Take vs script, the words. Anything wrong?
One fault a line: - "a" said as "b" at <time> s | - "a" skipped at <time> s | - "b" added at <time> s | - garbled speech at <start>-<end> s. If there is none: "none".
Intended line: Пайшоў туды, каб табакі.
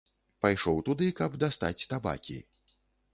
- "дастаць" added at 1.4 s